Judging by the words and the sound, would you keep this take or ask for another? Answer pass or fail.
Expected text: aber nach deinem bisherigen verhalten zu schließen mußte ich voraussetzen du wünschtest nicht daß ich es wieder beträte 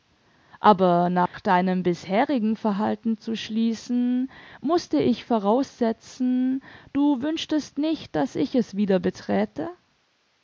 fail